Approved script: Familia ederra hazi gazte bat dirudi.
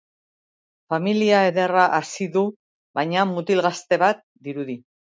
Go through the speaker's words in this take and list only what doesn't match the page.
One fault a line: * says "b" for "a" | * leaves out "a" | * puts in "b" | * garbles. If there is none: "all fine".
* puts in "du baina mutil"